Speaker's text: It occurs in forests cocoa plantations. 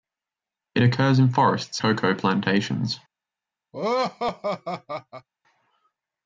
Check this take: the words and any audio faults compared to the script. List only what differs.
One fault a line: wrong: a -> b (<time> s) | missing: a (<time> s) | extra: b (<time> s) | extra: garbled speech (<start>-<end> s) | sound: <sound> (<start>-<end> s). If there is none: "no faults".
sound: laugh (3.7-5.3 s)